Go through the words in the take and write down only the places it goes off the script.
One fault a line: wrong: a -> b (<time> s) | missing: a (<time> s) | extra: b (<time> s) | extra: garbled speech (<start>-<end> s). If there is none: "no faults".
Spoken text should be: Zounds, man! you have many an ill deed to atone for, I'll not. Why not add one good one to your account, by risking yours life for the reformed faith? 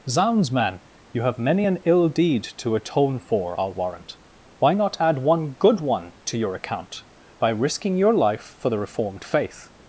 wrong: not -> warrant (3.7 s)
wrong: yours -> your (8.0 s)